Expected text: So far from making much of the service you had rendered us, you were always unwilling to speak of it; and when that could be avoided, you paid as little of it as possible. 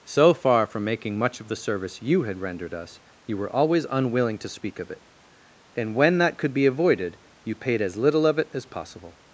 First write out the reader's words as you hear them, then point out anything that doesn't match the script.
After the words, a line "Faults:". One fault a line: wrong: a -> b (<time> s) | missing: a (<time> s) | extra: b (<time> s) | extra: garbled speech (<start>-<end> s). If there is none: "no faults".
So far from making much of the service you had rendered us, you were always unwilling to speak of it; and when that could be avoided, you paid as little of it as possible.
Faults:
no faults